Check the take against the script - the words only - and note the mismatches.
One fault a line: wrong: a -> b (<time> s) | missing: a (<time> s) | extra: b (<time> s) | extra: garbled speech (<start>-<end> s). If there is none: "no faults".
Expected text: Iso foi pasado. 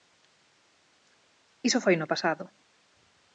extra: no (2.0 s)